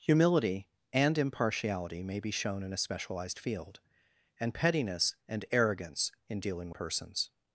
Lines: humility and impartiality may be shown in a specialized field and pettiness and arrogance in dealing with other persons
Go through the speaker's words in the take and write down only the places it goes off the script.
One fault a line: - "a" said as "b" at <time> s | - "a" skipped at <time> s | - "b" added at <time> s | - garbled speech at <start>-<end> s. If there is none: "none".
- "with other" skipped at 6.7 s